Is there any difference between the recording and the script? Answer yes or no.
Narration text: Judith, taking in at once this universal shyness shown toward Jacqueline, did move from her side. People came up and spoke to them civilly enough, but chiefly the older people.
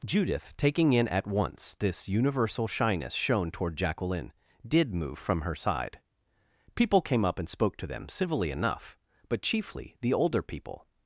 no